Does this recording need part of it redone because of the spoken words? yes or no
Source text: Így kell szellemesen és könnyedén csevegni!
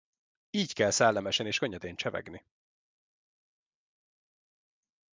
no